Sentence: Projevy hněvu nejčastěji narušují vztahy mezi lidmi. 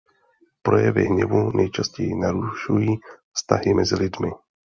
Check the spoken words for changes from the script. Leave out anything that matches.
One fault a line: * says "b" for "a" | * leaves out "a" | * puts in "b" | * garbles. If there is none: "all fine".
all fine